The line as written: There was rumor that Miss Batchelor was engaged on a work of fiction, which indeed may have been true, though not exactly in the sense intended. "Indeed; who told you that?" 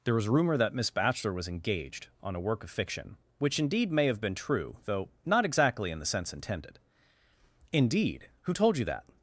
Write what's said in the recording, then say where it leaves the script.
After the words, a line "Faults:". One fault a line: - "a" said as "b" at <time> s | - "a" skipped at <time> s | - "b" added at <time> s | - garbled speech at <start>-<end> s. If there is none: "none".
There was rumor that Miss Batchelor was engaged on a work of fiction, which indeed may have been true, though not exactly in the sense intended. "Indeed; who told you that?"
Faults:
none